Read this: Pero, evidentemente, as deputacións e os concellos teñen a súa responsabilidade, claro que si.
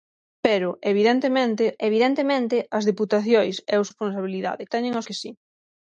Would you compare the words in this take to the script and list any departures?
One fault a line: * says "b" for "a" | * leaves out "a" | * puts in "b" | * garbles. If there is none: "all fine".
* puts in "evidentemente"
* says "responsabilidade" for "concellos"
* leaves out "súa responsabilidade claro"